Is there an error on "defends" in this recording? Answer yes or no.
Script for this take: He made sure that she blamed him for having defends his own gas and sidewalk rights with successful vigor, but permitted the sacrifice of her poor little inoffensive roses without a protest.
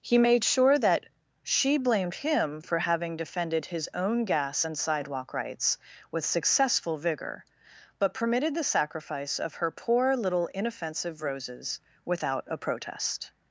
yes